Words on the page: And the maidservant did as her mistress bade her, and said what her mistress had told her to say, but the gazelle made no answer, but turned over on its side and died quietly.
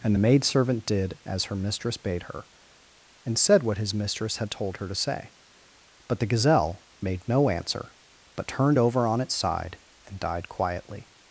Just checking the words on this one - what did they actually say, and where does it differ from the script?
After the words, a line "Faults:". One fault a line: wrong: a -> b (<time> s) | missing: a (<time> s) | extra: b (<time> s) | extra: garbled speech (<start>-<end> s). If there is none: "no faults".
And the maidservant did as her mistress bade her, and said what his mistress had told her to say, but the gazelle made no answer, but turned over on its side and died quietly.
Faults:
wrong: her -> his (3.8 s)